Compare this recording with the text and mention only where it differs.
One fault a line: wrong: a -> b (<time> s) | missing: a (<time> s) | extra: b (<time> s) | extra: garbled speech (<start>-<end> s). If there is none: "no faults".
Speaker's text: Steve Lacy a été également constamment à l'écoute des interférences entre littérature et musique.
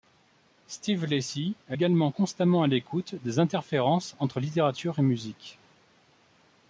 missing: été (1.8 s)